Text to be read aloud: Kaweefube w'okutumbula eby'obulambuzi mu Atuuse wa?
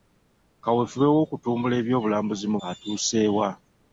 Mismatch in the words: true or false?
false